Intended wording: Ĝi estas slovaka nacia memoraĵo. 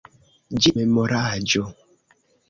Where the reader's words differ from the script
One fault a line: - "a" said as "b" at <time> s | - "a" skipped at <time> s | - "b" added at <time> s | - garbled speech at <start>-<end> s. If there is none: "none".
- "estas slovaka nacia" skipped at 0.7 s